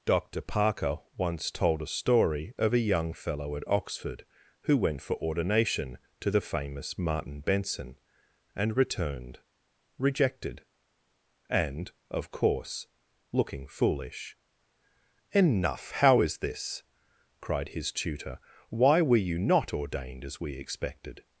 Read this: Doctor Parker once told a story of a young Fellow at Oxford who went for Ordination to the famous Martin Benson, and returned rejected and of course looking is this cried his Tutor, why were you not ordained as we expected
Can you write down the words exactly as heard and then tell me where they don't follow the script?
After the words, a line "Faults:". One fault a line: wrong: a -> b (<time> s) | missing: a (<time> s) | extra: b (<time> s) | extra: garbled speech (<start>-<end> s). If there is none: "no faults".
Doctor Parker once told a story of a young Fellow at Oxford who went for Ordination to the famous Martin Benson, and returned rejected and of course looking foolish enough, how is this cried his Tutor, why were you not ordained as we expected
Faults:
extra: foolish enough how (13.7 s)